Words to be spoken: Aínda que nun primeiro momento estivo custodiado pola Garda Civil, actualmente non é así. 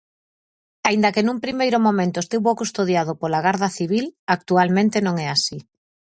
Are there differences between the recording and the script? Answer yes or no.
no